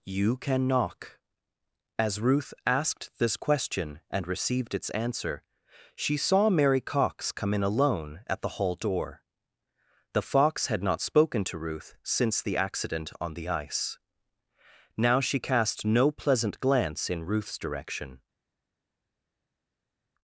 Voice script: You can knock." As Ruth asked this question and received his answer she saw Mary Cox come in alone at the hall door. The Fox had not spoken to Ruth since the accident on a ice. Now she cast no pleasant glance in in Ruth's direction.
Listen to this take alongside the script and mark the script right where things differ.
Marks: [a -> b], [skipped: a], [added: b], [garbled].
You can knock." As Ruth asked this question and received [his -> its] answer she saw Mary Cox come in alone at the hall door. The Fox had not spoken to Ruth since the accident on [a -> the] ice. Now she cast no pleasant glance in [skipped: in] Ruth's direction.